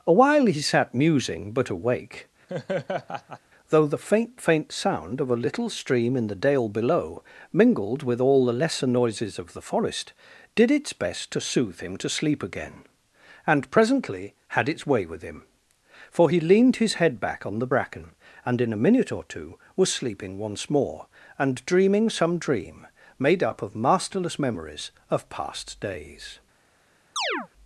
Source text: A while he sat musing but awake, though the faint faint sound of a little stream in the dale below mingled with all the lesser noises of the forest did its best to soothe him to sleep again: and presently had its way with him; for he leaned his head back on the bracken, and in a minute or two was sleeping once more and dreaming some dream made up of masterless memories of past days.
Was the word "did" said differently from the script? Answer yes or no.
no